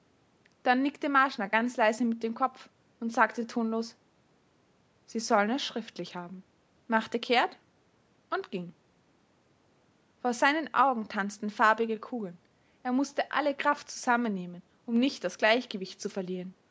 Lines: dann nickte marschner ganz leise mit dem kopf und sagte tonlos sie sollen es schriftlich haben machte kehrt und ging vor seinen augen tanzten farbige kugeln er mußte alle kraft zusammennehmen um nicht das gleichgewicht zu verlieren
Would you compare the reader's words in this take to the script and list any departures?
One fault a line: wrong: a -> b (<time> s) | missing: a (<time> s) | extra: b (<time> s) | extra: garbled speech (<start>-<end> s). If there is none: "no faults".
no faults